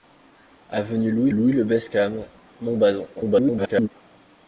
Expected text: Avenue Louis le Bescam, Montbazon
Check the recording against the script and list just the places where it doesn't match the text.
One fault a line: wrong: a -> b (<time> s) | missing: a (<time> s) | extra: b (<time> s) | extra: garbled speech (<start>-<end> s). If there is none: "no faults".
extra: Louis (1.3 s)
extra: garbled speech (3.2-3.9 s)